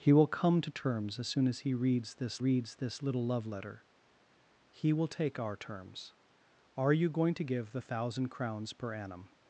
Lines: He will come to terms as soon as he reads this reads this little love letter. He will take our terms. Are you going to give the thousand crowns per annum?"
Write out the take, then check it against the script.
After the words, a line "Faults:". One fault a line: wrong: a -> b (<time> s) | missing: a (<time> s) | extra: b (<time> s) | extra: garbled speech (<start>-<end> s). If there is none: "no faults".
He will come to terms as soon as he reads this reads this little love letter. He will take our terms. Are you going to give the thousand crowns per annum?"
Faults:
no faults